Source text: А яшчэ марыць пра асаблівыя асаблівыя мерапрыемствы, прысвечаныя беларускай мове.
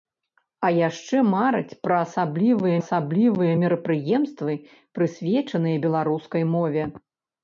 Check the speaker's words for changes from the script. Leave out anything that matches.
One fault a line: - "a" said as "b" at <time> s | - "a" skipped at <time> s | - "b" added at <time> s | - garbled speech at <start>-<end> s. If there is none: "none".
none